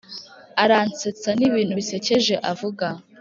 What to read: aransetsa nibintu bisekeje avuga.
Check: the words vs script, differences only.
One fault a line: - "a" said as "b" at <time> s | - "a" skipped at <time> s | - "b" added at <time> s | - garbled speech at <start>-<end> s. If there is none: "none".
none